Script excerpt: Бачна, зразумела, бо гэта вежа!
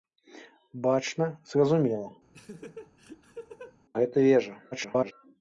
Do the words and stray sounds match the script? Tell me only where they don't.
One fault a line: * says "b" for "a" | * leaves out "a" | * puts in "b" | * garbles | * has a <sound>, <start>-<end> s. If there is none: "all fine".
* leaves out "бо"
* has a laugh, 2.3-3.8 s
* garbles